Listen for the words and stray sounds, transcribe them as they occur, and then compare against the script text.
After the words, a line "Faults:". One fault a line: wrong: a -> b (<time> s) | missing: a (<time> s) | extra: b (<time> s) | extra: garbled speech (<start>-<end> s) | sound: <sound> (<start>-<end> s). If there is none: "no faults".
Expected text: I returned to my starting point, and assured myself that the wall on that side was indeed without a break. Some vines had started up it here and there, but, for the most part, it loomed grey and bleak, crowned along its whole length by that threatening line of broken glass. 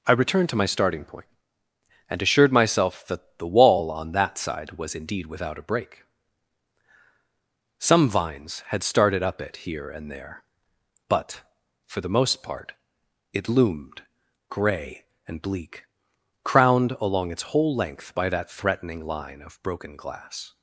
I returned to my starting point, and assured myself that the wall on that side was indeed without a break. Some vines had started up it here and there, but, for the most part, it loomed grey and bleak, crowned along its whole length by that threatening line of broken glass.
Faults:
no faults